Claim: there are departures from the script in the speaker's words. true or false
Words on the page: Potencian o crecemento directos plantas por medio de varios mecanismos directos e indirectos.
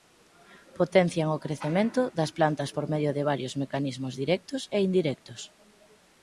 true